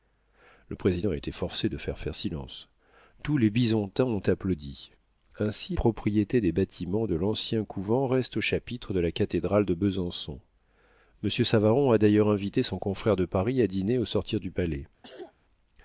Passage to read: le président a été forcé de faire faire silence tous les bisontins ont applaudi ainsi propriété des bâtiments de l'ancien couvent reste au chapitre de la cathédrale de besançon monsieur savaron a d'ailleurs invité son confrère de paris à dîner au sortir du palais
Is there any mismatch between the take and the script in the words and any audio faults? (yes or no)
yes